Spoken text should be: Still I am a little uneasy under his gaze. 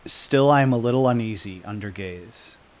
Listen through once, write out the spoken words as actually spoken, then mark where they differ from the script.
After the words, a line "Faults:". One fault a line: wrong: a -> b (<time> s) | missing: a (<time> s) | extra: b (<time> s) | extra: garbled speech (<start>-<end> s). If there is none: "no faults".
Still I am a little uneasy under gaze.
Faults:
missing: his (1.9 s)